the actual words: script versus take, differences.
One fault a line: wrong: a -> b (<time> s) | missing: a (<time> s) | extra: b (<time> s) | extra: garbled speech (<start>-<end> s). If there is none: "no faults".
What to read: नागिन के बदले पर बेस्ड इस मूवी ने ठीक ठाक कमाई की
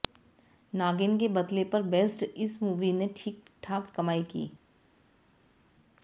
no faults